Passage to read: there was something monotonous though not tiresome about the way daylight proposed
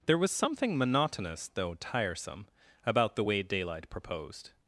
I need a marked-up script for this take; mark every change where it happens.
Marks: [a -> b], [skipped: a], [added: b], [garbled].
there was something monotonous though [skipped: not] tiresome about the way daylight proposed